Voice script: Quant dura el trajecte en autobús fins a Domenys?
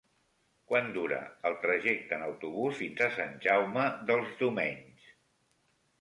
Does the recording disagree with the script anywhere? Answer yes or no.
yes